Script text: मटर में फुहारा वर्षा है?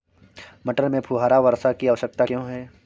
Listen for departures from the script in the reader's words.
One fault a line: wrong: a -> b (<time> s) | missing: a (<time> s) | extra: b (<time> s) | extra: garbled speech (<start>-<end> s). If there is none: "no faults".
extra: की आवश्यकता क्यो (1.7 s)